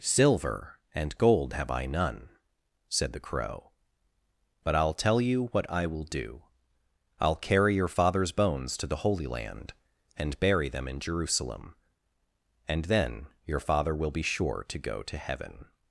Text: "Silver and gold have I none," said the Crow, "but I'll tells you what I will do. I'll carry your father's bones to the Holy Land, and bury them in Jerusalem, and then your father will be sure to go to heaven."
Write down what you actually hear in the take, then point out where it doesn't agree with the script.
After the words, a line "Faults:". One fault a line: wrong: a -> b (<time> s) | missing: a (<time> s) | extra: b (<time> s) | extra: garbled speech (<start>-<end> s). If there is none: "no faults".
"Silver and gold have I none," said the Crow, "but I'll tell you what I will do. I'll carry your father's bones to the Holy Land, and bury them in Jerusalem, and then your father will be sure to go to heaven."
Faults:
wrong: tells -> tell (5.0 s)